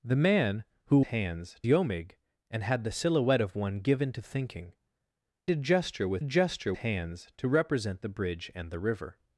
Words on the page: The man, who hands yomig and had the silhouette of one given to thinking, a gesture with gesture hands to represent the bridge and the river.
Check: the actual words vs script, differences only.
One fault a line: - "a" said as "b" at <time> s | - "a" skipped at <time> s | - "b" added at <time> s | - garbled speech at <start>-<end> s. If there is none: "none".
none